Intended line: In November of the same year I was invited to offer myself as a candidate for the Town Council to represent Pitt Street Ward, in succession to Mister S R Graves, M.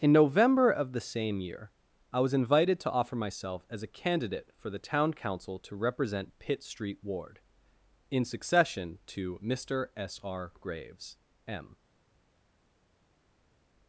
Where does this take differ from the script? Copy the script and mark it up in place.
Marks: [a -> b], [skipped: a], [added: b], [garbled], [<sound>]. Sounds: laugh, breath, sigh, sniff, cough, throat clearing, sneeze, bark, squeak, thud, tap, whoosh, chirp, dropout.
In November of the same year I was invited to offer myself as a candidate for the Town Council to represent Pitt Street Ward, in succession to Mister S R Graves, M.